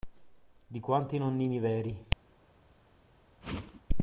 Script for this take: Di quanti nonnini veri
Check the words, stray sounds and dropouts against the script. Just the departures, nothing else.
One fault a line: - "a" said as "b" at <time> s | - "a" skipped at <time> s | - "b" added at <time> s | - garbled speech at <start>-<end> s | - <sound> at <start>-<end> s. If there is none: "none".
- whoosh at 3.4-3.8 s